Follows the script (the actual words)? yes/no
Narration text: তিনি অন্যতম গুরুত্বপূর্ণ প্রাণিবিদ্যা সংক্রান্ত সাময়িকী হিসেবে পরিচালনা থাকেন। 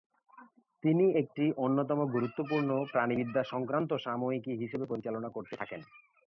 no